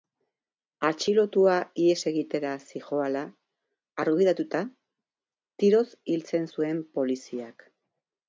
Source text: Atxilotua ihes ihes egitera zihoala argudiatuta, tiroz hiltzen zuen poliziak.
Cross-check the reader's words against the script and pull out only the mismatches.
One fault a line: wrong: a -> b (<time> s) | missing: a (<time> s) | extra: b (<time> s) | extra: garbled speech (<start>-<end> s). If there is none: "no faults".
missing: ihes (2.0 s)